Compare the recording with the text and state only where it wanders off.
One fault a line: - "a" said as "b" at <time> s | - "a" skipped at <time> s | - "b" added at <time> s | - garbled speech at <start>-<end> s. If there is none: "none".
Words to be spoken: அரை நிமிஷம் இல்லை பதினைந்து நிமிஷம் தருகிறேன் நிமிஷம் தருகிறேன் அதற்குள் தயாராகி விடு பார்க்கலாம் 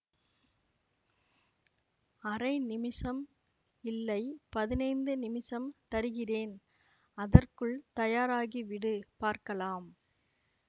- "நிமிஷம் தருகிறேன்" skipped at 6.5 s